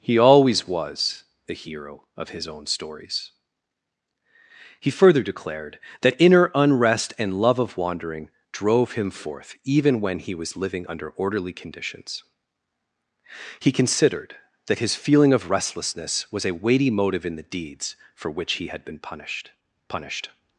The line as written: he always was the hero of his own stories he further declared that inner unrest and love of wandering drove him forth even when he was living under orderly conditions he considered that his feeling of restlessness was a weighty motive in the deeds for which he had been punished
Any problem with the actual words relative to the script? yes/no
yes